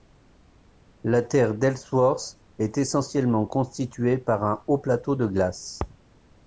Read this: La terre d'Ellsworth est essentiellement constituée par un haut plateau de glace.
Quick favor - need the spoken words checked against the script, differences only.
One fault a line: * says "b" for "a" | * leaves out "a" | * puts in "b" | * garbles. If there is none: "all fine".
all fine